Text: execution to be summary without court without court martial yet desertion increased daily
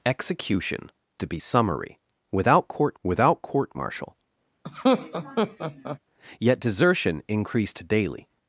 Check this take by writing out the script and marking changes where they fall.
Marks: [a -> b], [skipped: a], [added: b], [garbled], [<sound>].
execution to be summary without court without court martial [laugh] yet desertion increased daily